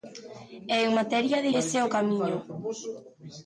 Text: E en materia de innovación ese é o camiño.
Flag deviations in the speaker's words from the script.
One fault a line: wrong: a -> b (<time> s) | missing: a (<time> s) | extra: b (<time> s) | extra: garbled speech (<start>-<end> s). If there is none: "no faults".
missing: innovación (1.5 s)